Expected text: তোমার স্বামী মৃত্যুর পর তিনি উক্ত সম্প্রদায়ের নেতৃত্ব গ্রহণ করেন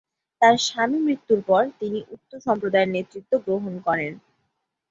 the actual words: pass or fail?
fail